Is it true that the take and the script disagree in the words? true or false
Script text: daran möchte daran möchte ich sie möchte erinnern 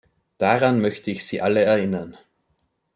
true